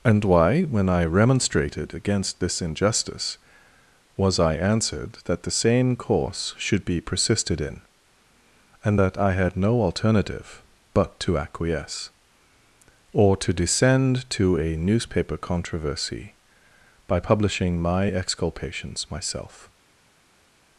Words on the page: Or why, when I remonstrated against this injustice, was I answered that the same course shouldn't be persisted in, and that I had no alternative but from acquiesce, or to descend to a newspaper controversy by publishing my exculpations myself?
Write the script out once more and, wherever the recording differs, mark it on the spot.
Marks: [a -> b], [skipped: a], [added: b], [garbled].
[Or -> And] why, when I remonstrated against this injustice, was I answered that the same course [shouldn't -> should] be persisted in, and that I had no alternative but [from -> to] acquiesce, or to descend to a newspaper controversy by publishing my exculpations myself?